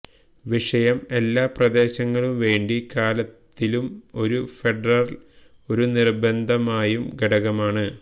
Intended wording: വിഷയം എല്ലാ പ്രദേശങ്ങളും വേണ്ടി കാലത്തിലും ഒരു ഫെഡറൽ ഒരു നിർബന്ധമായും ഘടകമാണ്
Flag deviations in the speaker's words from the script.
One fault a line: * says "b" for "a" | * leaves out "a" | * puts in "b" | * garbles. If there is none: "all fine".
all fine